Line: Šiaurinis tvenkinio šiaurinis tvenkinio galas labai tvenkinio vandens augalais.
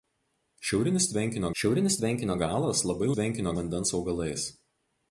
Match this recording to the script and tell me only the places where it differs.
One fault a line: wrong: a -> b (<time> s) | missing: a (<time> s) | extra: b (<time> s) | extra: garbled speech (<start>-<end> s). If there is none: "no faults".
no faults